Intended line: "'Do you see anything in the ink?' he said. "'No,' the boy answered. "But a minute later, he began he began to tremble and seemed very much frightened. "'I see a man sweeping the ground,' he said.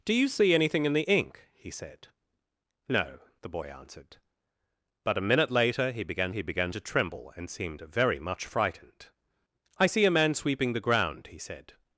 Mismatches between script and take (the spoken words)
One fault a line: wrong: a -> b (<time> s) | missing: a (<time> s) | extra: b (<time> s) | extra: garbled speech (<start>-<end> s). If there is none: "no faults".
no faults